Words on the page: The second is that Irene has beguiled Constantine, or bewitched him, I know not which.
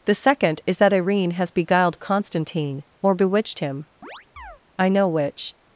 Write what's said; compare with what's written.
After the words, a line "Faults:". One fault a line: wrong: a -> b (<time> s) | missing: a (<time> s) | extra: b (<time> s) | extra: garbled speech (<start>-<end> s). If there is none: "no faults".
The second is that Irene has beguiled Constantine, or bewitched him, I know which.
Faults:
missing: not (5.1 s)